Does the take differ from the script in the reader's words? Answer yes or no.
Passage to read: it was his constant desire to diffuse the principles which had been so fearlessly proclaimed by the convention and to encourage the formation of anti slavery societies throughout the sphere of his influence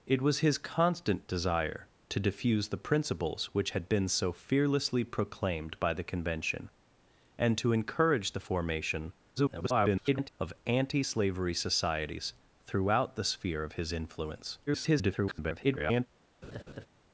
yes